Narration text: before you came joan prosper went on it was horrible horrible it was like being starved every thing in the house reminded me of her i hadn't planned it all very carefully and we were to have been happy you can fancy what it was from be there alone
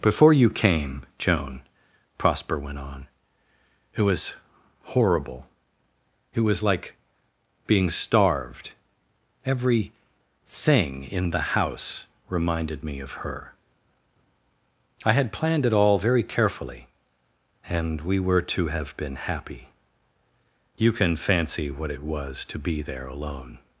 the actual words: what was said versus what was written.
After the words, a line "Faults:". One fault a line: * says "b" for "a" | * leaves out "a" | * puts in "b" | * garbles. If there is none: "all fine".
before you came joan prosper went on it was horrible it was like being starved every thing in the house reminded me of her i had planned it all very carefully and we were to have been happy you can fancy what it was to be there alone
Faults:
* leaves out "horrible"
* says "had" for "hadn't"
* says "to" for "from"